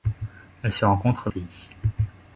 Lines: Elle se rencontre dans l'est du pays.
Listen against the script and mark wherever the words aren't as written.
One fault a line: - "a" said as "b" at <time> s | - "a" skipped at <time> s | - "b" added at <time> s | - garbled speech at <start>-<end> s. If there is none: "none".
- "dans l'est du" skipped at 1.3 s